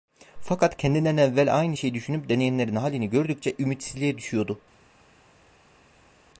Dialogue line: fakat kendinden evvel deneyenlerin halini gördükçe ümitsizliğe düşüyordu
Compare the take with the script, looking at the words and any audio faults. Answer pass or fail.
fail